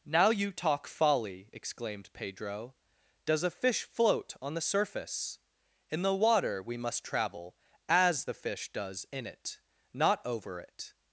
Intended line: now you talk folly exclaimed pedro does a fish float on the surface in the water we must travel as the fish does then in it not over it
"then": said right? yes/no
no